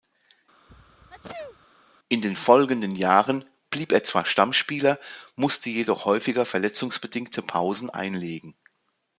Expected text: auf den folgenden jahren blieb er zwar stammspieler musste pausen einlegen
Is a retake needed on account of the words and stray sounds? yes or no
yes